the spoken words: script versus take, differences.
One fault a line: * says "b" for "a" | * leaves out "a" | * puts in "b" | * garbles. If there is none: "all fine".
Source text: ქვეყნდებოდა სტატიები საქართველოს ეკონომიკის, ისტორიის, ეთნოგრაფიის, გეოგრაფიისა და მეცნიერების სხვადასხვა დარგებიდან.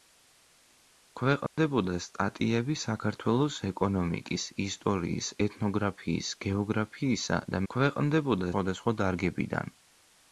* says "ქვეყნდებოდა" for "მეცნიერების"